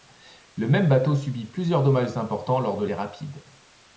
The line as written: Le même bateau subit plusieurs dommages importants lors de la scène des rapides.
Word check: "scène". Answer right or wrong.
wrong